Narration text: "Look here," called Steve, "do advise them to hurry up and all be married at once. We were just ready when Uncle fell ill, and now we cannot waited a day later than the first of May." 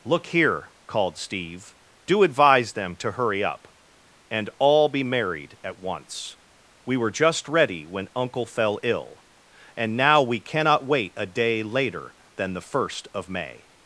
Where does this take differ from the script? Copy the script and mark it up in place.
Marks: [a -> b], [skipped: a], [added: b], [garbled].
"Look here," called Steve, "do advise them to hurry up and all be married at once. We were just ready when Uncle fell ill, and now we cannot [waited -> wait] a day later than the first of May."